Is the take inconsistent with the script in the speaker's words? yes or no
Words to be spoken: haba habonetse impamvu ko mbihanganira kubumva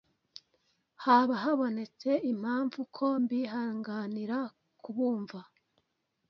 no